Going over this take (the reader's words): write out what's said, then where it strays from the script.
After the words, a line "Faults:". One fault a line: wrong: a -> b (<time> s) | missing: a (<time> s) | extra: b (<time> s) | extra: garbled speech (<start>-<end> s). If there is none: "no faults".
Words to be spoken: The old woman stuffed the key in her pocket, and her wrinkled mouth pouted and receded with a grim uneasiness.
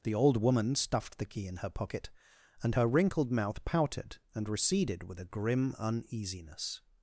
The old woman stuffed the key in her pocket, and her wrinkled mouth pouted and receded with a grim uneasiness.
Faults:
no faults